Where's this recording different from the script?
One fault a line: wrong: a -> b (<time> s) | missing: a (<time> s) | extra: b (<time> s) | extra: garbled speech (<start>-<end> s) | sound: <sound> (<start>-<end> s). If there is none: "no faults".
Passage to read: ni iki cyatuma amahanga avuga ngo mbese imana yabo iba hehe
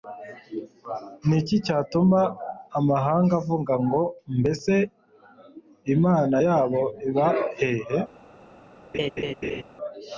sound: laugh (8.9-9.6 s)